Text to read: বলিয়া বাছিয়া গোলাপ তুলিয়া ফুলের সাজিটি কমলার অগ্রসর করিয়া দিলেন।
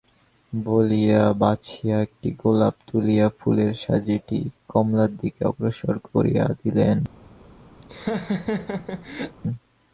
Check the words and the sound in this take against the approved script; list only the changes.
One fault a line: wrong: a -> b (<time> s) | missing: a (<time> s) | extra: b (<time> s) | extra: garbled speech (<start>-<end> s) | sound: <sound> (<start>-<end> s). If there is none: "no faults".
extra: একটি (2.0 s)
extra: দিকে (5.2 s)
sound: laugh (7.8-9.4 s)